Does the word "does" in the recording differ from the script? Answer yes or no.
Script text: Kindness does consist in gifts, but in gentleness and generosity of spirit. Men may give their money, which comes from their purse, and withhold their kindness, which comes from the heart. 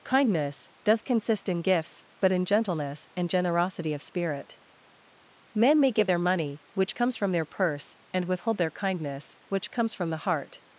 no